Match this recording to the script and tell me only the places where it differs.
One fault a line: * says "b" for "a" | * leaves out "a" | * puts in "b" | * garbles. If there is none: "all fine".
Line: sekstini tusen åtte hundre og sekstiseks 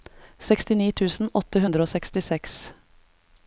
all fine